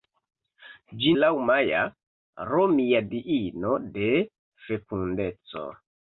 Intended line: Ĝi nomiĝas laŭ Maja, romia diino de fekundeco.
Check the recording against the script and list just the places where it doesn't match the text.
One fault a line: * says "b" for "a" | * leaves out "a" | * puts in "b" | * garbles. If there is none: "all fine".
* leaves out "nomiĝas"